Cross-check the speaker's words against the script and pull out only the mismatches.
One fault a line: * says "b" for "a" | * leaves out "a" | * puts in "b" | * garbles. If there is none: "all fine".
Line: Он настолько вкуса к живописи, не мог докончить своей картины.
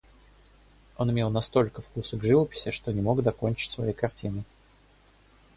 * puts in "имел"
* puts in "что"